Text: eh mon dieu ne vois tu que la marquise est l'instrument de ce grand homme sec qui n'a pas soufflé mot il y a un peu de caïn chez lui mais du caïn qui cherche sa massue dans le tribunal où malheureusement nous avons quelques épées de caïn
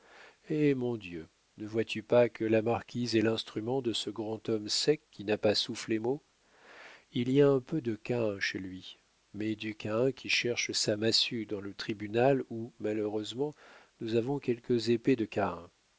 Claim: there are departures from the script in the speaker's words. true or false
true